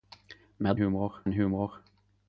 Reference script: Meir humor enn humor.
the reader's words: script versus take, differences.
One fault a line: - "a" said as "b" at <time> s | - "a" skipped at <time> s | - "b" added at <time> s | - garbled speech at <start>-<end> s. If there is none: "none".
none